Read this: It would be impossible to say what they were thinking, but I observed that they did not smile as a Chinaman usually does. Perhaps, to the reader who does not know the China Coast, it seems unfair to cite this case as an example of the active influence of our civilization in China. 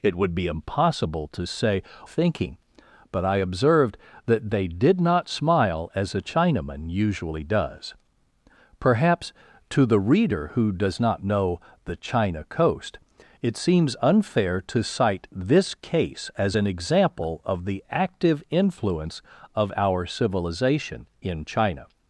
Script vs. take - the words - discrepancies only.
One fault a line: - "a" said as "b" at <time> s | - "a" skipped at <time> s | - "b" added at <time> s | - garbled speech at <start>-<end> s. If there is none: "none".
- "what they were" skipped at 1.8 s